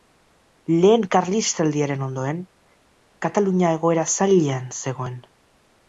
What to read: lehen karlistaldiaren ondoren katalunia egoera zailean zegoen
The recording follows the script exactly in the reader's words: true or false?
true